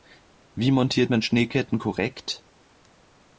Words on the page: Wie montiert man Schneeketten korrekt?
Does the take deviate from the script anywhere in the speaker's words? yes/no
no